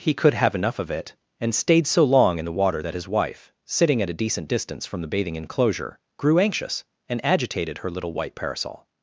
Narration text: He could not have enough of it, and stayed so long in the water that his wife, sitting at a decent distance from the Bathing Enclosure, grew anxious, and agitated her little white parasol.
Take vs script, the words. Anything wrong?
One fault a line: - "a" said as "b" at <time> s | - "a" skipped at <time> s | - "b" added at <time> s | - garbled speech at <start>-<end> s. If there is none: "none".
- "not" skipped at 0.3 s